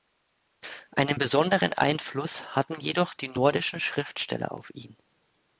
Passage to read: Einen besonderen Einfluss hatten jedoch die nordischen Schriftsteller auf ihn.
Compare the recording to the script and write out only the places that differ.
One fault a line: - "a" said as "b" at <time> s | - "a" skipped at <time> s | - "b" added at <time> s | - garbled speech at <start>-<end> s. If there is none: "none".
none